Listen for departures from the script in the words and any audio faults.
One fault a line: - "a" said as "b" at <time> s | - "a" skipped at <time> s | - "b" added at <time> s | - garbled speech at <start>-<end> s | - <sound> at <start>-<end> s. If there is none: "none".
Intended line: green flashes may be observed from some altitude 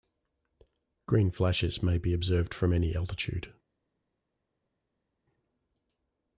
- "some" said as "any" at 2.7 s